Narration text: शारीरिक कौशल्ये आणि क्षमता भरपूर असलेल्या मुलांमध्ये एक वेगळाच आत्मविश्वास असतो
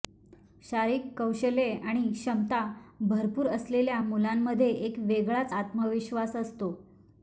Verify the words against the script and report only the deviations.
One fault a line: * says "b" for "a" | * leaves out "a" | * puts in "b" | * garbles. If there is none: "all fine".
all fine